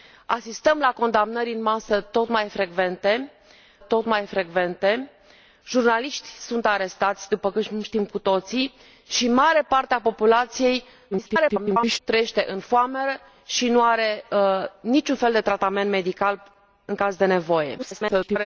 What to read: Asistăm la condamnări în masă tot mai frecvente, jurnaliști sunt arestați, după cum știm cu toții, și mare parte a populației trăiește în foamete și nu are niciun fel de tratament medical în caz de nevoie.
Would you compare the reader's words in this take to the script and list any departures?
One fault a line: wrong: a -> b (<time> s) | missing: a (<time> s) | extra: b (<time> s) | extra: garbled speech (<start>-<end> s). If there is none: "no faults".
extra: tot mai frecvente (3.8 s)
extra: garbled speech (11.1-12.0 s)
extra: garbled speech (17.8-18.5 s)